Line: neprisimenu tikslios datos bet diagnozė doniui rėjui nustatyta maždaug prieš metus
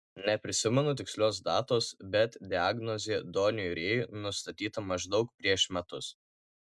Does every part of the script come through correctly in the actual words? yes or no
yes